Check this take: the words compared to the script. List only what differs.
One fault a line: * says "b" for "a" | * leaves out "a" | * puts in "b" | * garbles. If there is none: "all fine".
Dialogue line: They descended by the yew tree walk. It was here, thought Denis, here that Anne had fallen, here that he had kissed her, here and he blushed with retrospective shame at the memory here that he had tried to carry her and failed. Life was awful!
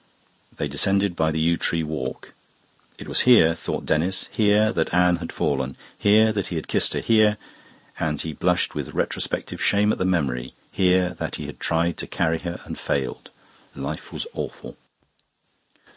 all fine